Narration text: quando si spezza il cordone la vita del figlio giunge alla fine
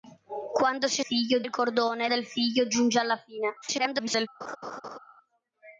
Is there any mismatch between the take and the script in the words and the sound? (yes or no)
yes